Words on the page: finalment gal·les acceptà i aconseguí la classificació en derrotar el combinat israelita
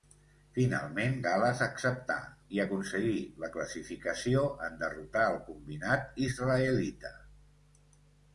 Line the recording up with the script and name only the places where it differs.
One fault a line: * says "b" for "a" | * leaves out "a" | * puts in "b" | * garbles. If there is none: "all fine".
all fine